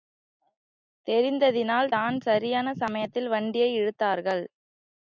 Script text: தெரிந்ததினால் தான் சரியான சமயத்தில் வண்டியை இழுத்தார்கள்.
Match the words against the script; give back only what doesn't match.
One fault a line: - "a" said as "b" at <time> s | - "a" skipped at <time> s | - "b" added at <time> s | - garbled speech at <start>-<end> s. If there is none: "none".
none